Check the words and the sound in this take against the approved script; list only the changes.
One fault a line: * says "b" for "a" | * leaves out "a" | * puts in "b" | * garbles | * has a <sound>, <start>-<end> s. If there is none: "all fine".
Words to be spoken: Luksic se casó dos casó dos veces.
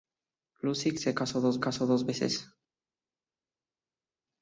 all fine